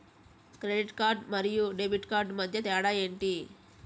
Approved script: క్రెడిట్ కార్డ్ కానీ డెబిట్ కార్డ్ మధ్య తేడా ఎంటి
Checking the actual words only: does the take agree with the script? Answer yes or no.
no